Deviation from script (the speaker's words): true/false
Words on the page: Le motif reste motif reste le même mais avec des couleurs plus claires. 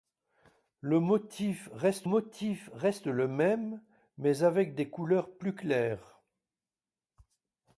false